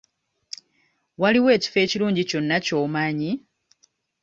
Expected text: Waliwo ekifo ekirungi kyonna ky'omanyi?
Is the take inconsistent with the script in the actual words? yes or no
no